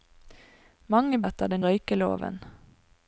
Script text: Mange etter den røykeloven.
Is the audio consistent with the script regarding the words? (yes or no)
yes